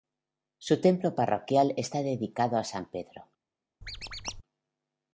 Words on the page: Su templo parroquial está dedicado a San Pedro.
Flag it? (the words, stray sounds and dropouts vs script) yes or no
yes